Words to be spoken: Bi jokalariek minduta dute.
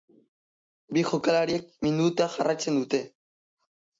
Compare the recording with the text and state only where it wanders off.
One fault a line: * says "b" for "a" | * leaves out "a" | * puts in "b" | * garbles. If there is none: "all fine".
* puts in "jarraitzen"